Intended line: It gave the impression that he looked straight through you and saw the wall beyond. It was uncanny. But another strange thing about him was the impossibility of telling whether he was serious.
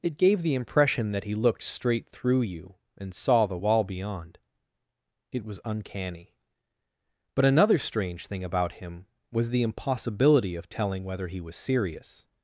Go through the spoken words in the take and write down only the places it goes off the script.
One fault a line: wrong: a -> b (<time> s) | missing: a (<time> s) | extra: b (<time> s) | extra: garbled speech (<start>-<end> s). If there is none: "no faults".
no faults